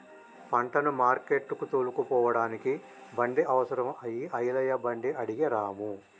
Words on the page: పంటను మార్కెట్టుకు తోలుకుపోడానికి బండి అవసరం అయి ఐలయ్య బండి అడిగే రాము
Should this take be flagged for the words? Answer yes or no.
no